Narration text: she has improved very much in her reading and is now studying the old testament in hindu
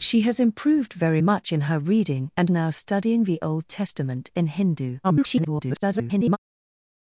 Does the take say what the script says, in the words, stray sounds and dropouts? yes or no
no